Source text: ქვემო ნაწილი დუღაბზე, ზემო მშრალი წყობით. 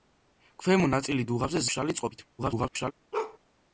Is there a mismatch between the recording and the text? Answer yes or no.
yes